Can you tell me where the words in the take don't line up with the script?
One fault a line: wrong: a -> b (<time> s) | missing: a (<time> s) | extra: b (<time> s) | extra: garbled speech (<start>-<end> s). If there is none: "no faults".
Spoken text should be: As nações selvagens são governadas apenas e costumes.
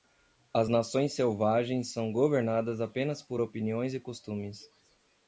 extra: por opiniões (3.2 s)